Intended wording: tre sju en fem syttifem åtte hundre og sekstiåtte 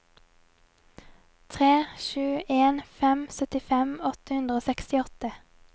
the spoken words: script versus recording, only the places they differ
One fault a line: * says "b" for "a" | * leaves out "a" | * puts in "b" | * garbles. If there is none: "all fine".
all fine